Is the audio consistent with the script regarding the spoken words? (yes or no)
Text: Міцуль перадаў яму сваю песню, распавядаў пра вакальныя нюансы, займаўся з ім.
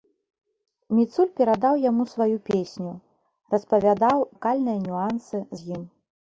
no